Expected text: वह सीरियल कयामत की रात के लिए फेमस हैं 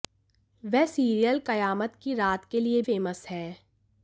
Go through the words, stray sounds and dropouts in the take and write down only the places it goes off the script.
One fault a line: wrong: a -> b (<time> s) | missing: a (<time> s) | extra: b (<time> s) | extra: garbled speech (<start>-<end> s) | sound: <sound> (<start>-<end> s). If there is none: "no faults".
no faults